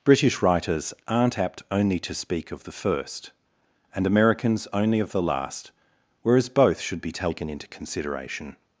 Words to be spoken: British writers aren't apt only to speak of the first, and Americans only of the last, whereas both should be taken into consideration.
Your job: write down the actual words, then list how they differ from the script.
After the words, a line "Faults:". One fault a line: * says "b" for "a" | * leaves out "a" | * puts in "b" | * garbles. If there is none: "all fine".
British writers aren't apt only to speak of the first, and Americans only of the last, whereas both should be taken into consideration.
Faults:
all fine